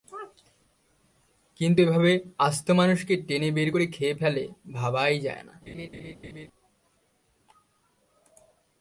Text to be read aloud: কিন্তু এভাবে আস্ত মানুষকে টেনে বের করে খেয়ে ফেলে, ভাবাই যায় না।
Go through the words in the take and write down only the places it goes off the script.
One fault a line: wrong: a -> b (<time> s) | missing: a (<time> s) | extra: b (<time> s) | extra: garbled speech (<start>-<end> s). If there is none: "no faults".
no faults